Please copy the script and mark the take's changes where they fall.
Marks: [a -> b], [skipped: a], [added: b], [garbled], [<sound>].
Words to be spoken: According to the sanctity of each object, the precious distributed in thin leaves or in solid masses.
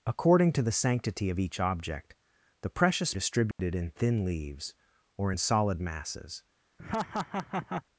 According to the sanctity of each object, the precious distributed [dropout] in thin leaves or in solid masses. [laugh]